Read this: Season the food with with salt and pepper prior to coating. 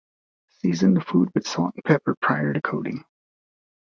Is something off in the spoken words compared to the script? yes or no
yes